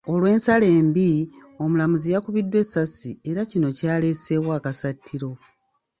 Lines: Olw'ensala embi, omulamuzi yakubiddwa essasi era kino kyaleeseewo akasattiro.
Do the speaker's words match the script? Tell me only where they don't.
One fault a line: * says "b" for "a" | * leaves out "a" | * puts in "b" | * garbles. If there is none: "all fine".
all fine